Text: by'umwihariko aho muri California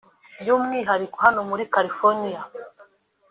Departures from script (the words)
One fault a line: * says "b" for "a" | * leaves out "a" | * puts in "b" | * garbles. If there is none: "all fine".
* says "hano" for "aho"